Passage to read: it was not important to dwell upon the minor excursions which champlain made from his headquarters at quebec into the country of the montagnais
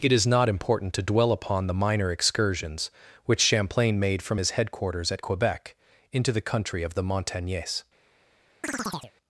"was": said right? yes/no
no